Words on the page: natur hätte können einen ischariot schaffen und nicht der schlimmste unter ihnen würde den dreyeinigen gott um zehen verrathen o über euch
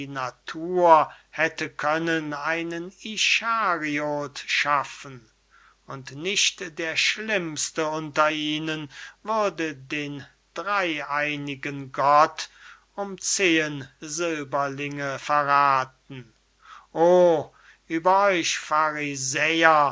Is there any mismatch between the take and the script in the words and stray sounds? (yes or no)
yes